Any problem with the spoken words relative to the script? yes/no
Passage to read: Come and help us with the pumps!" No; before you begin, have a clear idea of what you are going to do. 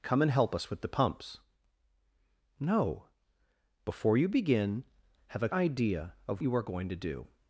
yes